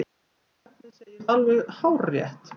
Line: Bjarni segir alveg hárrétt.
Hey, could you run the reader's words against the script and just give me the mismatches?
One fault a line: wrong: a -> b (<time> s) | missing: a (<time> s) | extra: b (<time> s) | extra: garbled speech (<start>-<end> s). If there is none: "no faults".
no faults